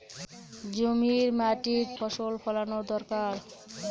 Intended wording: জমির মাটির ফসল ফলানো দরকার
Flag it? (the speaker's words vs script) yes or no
no